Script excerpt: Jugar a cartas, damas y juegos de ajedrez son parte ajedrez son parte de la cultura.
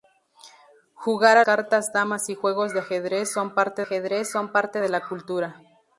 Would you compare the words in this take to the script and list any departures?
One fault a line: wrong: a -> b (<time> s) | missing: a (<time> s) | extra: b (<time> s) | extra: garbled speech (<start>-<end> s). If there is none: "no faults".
no faults